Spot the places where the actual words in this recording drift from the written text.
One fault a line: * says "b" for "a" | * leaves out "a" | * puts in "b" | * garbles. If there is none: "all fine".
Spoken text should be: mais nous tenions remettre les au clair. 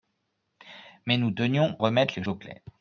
all fine